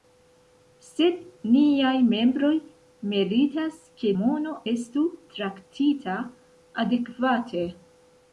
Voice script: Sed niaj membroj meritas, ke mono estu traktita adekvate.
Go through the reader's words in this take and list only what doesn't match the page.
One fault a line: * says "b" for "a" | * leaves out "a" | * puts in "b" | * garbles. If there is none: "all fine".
all fine